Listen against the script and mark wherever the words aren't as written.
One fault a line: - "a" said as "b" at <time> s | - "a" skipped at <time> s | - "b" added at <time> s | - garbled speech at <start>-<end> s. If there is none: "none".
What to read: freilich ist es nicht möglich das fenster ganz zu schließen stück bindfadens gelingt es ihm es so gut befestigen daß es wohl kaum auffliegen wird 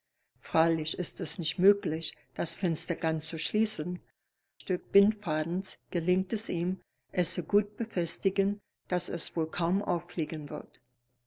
none